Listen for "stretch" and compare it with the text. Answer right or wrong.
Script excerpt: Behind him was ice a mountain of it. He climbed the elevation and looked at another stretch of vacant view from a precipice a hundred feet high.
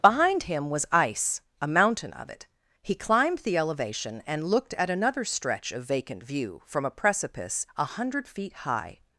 right